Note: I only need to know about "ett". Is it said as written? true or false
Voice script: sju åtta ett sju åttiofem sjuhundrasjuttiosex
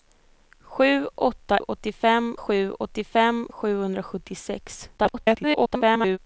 false